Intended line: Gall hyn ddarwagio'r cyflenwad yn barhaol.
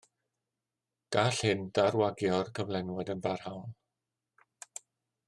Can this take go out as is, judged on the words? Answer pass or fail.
pass